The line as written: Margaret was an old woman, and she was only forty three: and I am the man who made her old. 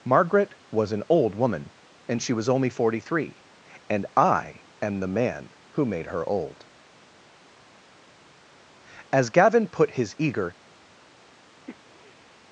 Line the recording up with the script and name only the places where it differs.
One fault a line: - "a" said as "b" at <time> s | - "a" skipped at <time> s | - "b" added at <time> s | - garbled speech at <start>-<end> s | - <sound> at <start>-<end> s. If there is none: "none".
- "As Gavin put his eager" added at 9.1 s
- sniff at 11.7-12.3 s